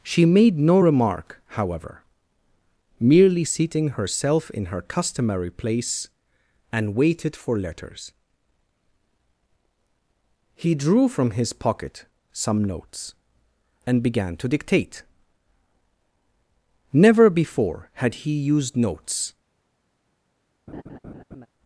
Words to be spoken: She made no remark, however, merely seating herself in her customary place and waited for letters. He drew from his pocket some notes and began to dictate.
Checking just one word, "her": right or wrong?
right